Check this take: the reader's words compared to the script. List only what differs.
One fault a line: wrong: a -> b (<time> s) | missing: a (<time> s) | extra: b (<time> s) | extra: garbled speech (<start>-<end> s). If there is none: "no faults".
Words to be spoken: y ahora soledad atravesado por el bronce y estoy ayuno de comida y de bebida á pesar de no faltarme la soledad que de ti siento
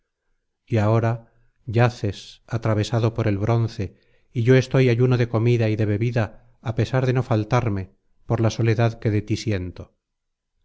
wrong: soledad -> yaces (1.7 s)
extra: yo (4.4 s)
extra: por (8.2 s)